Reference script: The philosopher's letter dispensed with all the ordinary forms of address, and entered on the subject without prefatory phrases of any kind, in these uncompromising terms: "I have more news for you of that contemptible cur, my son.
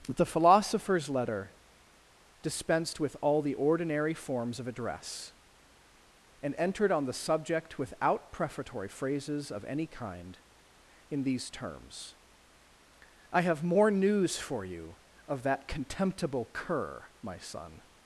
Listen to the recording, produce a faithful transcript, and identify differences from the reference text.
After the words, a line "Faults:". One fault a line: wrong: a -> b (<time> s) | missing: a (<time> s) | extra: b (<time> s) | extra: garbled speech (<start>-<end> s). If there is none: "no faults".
The philosopher's letter dispensed with all the ordinary forms of address, and entered on the subject without prefatory phrases of any kind, in these terms: "I have more news for you of that contemptible cur, my son.
Faults:
missing: uncompromising (11.5 s)